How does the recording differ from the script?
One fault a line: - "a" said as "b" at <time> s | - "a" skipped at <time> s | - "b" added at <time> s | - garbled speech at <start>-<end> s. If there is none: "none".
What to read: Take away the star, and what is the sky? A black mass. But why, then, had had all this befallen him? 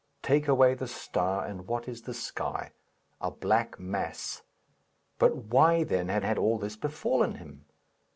none